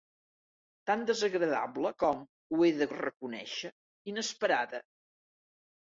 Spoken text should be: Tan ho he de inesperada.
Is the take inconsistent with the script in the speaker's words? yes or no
yes